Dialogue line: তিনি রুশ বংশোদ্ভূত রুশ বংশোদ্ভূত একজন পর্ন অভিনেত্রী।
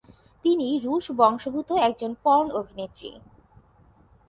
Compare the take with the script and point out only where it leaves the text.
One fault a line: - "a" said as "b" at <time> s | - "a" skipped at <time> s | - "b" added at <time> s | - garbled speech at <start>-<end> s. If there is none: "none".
- "রুশ বংশোদ্ভূত" skipped at 1.7 s